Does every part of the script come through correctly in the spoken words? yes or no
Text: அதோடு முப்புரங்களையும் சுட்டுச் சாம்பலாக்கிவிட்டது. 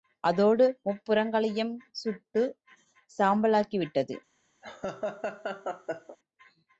yes